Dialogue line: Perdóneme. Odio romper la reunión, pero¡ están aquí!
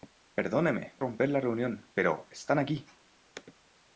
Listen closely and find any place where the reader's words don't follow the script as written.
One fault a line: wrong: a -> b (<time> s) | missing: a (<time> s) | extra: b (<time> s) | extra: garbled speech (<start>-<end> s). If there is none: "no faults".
missing: Odio (0.9 s)